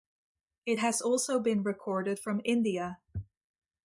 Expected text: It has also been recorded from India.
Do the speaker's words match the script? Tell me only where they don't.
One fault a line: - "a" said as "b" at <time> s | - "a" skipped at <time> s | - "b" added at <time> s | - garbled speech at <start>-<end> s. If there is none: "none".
none